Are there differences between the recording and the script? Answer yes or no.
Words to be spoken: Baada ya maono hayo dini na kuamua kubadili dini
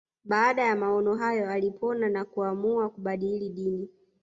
yes